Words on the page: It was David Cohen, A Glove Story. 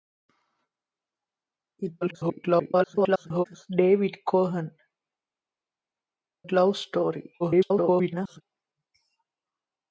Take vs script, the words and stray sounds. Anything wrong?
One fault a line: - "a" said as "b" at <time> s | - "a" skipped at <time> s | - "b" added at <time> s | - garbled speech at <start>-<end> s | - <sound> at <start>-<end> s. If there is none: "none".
- garbled speech at 2.0-3.4 s
- "A" skipped at 4.7 s
- garbled speech at 7.4-8.4 s